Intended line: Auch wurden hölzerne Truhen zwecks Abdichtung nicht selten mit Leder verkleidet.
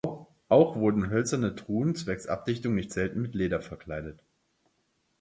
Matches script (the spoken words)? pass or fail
pass